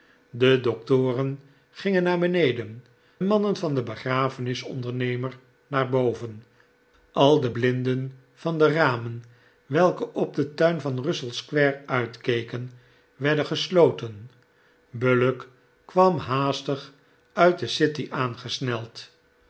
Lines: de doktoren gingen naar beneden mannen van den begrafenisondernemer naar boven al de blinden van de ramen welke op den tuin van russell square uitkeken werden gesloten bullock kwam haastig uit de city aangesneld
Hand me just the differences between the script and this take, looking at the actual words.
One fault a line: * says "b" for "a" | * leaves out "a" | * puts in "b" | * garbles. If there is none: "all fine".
all fine